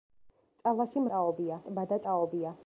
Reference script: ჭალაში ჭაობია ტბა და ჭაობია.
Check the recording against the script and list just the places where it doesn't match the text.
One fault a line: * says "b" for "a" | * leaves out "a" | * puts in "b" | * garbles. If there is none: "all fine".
all fine